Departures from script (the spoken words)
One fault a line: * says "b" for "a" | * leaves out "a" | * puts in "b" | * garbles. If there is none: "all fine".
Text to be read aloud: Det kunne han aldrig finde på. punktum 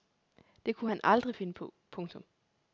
all fine